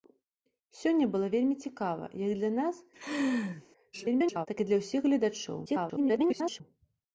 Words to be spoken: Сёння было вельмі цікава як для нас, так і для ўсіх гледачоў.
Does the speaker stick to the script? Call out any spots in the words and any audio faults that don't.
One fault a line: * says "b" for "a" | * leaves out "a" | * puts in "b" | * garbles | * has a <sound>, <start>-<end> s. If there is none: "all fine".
* has a laugh, 2.9-3.6 s
* garbles
* garbles